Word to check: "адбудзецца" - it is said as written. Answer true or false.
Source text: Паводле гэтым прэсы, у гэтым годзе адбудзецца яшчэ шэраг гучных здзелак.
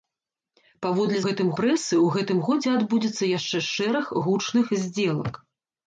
true